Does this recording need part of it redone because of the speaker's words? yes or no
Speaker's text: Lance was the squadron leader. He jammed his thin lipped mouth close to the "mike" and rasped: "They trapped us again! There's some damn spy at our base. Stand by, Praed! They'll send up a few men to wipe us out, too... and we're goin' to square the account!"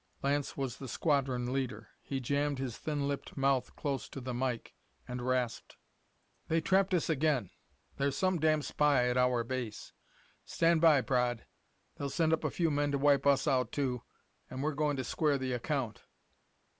no